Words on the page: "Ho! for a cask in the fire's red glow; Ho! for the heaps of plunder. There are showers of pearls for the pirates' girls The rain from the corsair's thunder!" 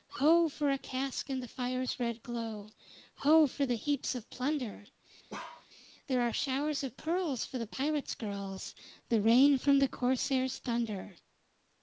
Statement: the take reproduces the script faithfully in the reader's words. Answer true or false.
true